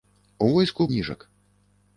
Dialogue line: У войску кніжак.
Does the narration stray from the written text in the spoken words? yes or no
no